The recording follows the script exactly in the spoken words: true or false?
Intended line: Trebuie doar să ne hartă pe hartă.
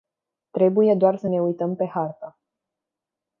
false